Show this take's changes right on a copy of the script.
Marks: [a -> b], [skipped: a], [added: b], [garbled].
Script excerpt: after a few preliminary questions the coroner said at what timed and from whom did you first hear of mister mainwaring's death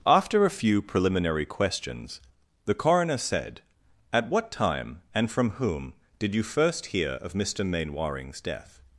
after a few preliminary questions the coroner said at what [timed -> time] and from whom did you first hear of mister mainwaring's death